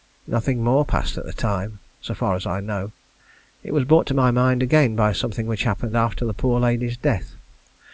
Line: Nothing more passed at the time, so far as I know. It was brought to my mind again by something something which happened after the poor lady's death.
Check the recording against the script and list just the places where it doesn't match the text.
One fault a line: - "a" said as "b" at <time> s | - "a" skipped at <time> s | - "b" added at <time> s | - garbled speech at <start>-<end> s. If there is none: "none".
- "something" skipped at 5.5 s